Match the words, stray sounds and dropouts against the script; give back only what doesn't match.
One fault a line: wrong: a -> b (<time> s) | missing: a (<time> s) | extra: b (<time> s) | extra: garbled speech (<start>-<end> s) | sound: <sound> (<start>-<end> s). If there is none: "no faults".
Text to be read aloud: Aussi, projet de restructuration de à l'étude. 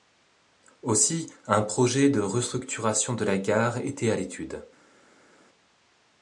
extra: un (1.4 s)
extra: la gare était (3.2 s)